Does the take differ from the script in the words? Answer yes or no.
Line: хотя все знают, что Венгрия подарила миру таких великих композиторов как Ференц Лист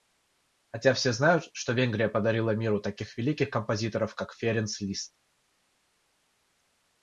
no